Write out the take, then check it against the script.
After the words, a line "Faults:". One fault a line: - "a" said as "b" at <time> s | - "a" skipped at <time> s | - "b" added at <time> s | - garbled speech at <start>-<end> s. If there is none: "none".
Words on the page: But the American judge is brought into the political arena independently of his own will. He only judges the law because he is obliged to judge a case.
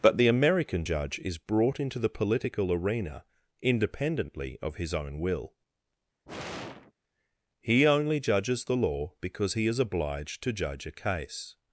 But the American judge is brought into the political arena independently of his own will. He only judges the law because he is obliged to judge a case.
Faults:
none